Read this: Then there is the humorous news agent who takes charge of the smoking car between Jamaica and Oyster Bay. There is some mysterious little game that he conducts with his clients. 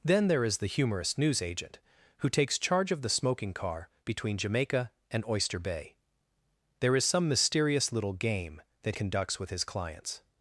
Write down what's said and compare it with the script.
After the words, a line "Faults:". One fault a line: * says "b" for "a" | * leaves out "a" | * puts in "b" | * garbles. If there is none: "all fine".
Then there is the humorous news agent who takes charge of the smoking car between Jamaica and Oyster Bay. There is some mysterious little game that conducts with his clients.
Faults:
* leaves out "he"